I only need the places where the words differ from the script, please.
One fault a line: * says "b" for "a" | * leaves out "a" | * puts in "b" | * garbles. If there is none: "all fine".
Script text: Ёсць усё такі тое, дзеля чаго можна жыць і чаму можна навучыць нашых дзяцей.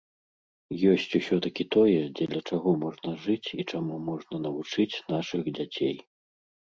all fine